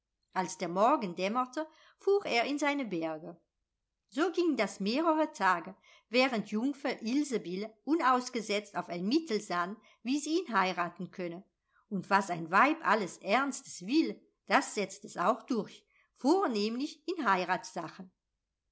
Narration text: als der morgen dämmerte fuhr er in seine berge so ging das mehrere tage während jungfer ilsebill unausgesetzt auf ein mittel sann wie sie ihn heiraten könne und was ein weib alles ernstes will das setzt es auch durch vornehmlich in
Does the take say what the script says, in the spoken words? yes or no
yes